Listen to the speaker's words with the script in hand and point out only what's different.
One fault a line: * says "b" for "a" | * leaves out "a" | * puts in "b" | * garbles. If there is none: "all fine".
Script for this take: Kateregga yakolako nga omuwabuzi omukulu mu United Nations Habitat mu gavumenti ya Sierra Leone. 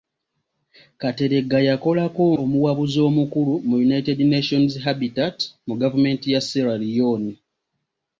* leaves out "nga"